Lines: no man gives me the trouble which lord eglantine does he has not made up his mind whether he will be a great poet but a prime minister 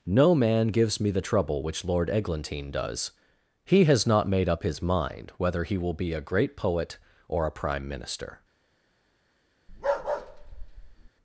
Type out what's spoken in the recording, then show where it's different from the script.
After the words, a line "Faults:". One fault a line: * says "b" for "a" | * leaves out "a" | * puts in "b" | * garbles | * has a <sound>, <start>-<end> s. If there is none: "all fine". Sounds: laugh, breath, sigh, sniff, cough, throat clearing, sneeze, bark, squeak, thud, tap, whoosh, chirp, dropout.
no man gives me the trouble which lord eglantine does he has not made up his mind whether he will be a great poet or a prime minister
Faults:
* says "or" for "but"
* has a bark, 9.7-11.1 s